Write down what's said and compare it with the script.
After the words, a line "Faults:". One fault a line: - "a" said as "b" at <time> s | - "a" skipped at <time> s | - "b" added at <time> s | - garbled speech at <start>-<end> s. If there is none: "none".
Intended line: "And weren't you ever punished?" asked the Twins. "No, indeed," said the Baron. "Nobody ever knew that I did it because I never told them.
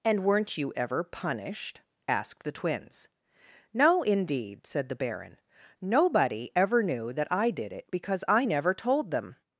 "And weren't you ever punished?" asked the Twins. "No, indeed," said the Baron. "Nobody ever knew that I did it because I never told them.
Faults:
none